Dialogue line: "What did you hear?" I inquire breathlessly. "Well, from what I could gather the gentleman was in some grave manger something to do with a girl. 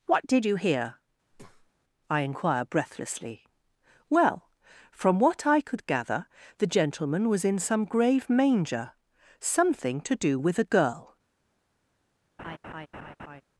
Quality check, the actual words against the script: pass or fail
pass